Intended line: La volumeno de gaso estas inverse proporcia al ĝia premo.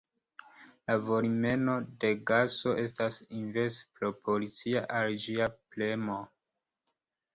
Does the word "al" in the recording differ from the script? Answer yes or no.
no